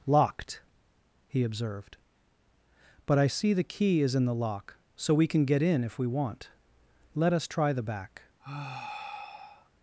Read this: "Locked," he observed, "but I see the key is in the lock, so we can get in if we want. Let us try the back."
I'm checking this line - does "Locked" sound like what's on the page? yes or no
yes